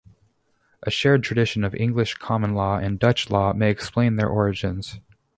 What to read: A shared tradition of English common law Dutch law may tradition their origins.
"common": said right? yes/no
yes